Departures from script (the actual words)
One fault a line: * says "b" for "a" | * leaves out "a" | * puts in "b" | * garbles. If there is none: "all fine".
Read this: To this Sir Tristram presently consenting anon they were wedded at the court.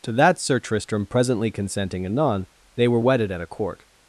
* says "that" for "this"
* says "a" for "the"